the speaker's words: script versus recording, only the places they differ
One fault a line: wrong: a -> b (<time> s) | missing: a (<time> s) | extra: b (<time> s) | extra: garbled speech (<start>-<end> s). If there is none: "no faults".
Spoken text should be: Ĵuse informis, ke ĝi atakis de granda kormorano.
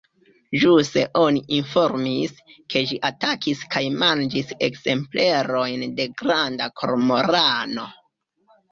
extra: oni (1.2 s)
extra: kaj manĝis ekzemplerojn (3.7 s)